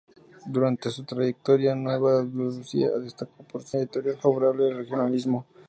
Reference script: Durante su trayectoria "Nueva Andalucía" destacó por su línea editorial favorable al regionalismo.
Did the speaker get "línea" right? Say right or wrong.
wrong